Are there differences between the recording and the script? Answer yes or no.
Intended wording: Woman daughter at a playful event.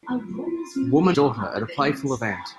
no